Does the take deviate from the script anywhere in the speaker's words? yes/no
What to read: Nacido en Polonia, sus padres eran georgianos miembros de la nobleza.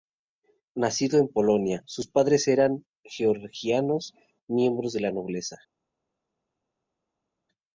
no